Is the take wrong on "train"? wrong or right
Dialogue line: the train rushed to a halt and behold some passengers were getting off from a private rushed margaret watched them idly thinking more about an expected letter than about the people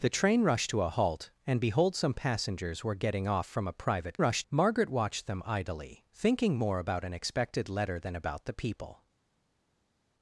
right